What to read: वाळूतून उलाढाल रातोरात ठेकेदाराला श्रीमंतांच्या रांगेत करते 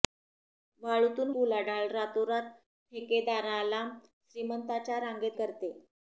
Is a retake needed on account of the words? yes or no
no